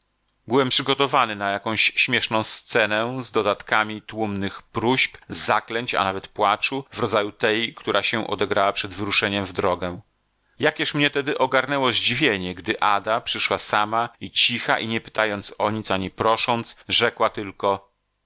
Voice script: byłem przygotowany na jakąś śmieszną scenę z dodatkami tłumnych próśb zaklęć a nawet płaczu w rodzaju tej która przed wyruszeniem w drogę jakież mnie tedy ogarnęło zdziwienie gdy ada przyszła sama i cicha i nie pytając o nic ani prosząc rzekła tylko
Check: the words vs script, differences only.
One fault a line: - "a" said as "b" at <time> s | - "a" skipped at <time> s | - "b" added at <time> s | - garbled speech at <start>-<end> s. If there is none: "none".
- "się odegrała" added at 8.0 s